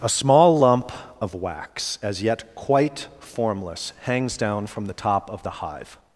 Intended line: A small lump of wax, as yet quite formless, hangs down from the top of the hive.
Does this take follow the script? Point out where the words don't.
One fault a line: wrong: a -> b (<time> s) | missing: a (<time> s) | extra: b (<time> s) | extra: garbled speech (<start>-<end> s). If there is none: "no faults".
no faults